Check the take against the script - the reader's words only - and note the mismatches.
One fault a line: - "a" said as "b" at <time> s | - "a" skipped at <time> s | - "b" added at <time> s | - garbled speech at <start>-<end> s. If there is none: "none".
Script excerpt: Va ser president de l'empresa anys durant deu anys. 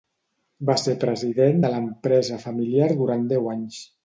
- "anys" said as "familiar" at 2.5 s